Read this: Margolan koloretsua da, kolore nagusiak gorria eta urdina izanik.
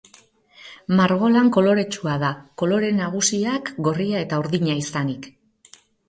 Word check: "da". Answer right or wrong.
right